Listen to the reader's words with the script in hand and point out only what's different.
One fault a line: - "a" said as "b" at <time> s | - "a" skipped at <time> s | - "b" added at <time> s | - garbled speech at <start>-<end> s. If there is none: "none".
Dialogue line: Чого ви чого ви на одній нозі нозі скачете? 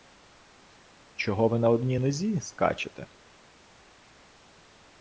- "чого ви" skipped at 1.6 s
- "нозі" skipped at 2.4 s